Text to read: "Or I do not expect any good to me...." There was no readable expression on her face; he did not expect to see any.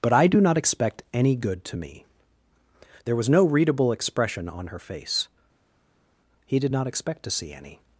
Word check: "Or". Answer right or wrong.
wrong